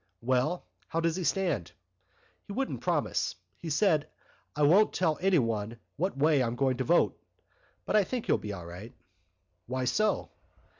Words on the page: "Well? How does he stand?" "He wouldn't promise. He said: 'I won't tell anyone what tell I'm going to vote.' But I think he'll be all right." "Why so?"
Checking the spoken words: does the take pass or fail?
fail